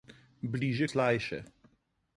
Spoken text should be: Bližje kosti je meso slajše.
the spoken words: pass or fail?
fail